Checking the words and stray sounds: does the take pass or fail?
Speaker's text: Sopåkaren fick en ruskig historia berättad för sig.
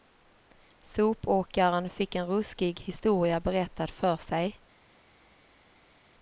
pass